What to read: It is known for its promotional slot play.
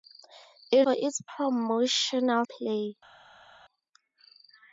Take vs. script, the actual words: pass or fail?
fail